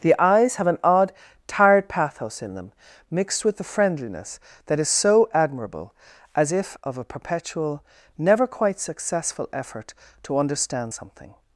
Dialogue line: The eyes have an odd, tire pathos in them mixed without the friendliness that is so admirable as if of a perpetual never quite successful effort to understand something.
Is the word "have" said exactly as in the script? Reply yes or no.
yes